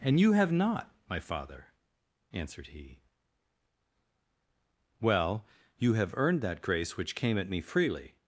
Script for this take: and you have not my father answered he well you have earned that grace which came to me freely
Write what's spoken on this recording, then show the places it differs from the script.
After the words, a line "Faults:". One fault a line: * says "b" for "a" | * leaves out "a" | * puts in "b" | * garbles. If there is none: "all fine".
and you have not my father answered he well you have earned that grace which came at me freely
Faults:
* says "at" for "to"